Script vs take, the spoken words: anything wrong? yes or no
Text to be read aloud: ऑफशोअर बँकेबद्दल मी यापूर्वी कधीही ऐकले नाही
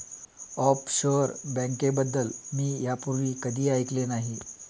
no